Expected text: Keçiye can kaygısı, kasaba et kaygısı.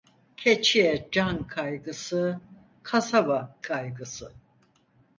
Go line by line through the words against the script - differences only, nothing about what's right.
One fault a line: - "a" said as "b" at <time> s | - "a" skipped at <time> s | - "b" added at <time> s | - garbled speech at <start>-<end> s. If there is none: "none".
- "et" skipped at 3.5 s